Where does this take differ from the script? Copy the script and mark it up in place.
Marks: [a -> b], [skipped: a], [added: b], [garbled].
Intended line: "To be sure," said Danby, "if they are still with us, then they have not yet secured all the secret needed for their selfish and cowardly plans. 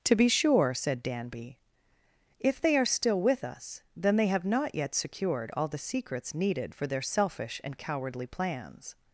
"To be sure," said Danby, "if they are still with us, then they have not yet secured all the [secret -> secrets] needed for their selfish and cowardly plans.